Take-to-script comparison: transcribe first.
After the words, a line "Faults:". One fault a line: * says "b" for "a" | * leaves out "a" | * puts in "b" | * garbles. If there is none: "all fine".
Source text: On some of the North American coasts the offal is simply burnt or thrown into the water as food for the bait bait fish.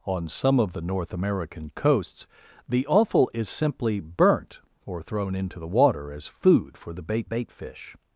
On some of the North American coasts the offal is simply burnt or thrown into the water as food for the bait bait fish.
Faults:
all fine